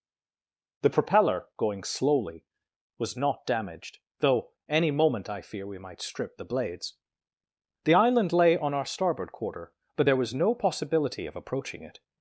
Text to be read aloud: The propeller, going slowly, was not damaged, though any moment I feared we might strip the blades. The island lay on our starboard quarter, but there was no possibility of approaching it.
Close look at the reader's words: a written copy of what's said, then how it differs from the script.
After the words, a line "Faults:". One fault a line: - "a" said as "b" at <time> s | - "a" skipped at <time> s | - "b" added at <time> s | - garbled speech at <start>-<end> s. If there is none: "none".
The propeller, going slowly, was not damaged, though any moment I fear we might strip the blades. The island lay on our starboard quarter, but there was no possibility of approaching it.
Faults:
- "feared" said as "fear" at 5.4 s